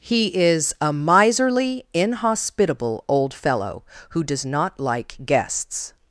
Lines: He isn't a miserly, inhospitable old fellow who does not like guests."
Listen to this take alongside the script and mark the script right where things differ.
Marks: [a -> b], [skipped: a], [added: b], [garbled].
He [isn't -> is] a miserly, inhospitable old fellow who does not like guests."